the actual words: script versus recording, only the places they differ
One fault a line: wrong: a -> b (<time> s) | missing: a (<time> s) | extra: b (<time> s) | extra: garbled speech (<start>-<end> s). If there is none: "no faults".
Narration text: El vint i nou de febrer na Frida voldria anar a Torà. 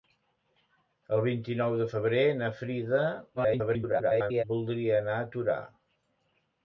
extra: garbled speech (3.4-4.4 s)